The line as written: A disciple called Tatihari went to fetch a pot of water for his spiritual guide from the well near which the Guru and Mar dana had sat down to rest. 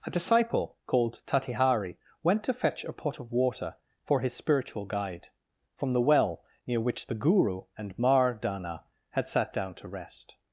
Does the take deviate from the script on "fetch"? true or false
false